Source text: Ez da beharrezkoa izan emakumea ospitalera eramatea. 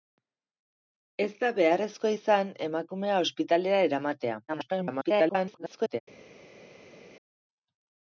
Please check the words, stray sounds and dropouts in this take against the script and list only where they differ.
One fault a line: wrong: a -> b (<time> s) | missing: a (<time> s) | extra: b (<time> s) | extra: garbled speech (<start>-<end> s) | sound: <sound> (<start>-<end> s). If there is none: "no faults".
extra: garbled speech (4.5-6.0 s)